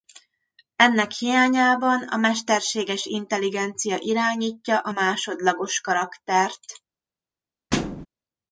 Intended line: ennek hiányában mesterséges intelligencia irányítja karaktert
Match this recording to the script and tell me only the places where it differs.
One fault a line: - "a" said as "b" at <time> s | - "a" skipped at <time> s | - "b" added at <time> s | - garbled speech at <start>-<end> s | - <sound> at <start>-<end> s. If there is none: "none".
- "a" added at 2.0 s
- "a másodlagos" added at 4.8 s
- thud at 7.7-8.1 s